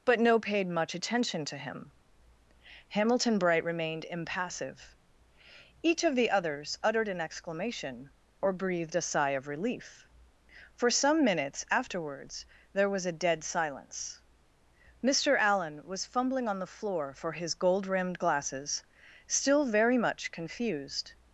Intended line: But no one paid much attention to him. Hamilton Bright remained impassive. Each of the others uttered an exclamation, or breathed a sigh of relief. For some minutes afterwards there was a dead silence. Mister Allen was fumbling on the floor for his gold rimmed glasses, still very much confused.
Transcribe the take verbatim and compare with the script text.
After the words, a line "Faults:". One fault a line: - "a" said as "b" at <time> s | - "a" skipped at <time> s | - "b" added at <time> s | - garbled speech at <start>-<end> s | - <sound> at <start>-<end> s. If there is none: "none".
But no paid much attention to him. Hamilton Bright remained impassive. Each of the others uttered an exclamation, or breathed a sigh of relief. For some minutes afterwards there was a dead silence. Mister Allen was fumbling on the floor for his gold rimmed glasses, still very much confused.
Faults:
- "one" skipped at 0.4 s